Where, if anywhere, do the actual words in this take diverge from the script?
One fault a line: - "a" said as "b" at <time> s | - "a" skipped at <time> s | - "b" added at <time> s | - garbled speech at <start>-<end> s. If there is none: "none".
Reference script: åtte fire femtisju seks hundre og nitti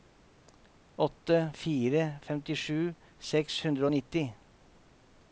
none